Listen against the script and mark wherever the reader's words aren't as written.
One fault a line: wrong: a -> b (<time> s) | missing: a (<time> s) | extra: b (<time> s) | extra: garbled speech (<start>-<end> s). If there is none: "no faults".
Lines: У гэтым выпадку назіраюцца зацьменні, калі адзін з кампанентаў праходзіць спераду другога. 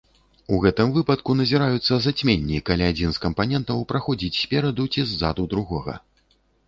extra: ці ззаду (5.0 s)